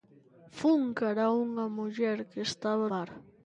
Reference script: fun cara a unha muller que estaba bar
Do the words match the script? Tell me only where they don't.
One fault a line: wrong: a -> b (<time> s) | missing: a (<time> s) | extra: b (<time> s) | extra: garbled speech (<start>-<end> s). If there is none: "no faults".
no faults